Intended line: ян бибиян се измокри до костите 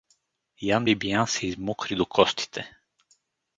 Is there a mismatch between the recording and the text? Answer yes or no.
no